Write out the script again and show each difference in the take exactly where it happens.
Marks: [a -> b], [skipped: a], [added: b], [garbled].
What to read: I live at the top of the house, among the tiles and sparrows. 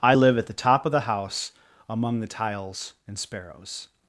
I live at the top of the house, among the tiles and sparrows.